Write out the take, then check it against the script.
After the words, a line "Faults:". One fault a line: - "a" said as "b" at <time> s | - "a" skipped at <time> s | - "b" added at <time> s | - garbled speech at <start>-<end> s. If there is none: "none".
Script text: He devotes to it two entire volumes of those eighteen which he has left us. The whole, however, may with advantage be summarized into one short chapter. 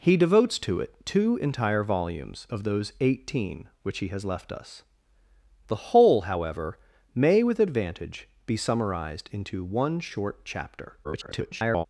He devotes to it two entire volumes of those eighteen which he has left us. The whole, however, may with advantage be summarized into one short chapter. [garbled]
Faults:
- garbled speech at 11.0-11.9 s